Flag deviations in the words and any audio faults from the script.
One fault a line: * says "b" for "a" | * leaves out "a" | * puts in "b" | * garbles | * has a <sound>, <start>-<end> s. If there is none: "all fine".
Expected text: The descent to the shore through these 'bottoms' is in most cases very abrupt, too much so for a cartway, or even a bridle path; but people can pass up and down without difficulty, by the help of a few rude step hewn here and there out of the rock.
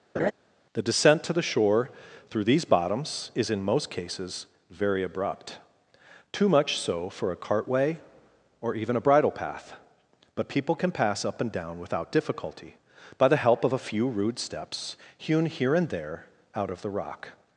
* has a laugh, 0.2-0.3 s
* says "steps" for "step"